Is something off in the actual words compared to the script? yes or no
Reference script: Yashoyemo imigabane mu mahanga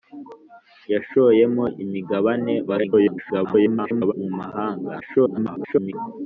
yes